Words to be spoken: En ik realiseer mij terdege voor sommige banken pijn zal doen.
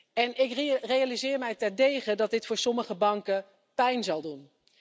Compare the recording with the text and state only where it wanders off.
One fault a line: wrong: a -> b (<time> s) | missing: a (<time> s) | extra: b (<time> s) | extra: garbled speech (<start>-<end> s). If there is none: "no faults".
extra: dat dit (2.1 s)